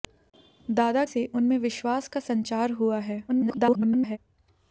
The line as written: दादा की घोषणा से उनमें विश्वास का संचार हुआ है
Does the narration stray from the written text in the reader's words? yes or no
yes